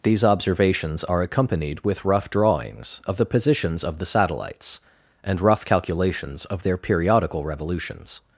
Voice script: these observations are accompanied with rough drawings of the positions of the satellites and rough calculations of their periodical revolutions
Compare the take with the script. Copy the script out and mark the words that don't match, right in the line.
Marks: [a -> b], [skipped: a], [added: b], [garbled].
these observations are accompanied with rough drawings of the positions of the satellites and rough calculations of their periodical revolutions